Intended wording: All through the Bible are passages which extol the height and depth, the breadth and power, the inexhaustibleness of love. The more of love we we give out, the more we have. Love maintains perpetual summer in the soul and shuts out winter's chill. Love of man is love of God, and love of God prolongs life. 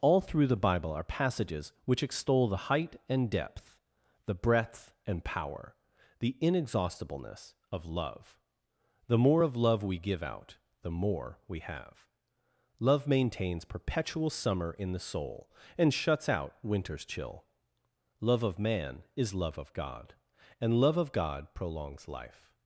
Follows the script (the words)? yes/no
no